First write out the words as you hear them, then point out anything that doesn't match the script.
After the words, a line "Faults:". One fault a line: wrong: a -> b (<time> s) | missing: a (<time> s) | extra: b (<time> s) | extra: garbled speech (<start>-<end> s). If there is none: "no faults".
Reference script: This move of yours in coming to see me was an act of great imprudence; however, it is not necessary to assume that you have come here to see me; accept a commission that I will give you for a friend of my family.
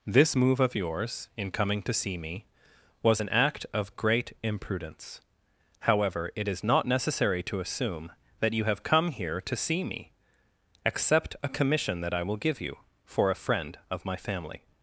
This move of yours in coming to see me was an act of great imprudence; however, it is not necessary to assume that you have come here to see me; accept a commission that I will give you for a friend of my family.
Faults:
no faults